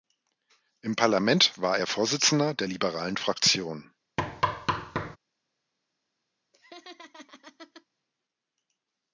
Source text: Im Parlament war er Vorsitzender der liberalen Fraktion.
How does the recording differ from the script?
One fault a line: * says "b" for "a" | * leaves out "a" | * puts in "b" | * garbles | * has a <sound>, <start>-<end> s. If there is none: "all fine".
* has a thud, 4.2-5.2 s
* has a laugh, 6.5-7.9 s